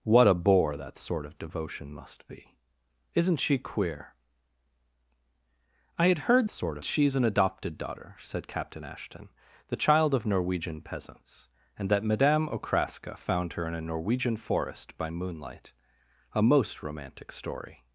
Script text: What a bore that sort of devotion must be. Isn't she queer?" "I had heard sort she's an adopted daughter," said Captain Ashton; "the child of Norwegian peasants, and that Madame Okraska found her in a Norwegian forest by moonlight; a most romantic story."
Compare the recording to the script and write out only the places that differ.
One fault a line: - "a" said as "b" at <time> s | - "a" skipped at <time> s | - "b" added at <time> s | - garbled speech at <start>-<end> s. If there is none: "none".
none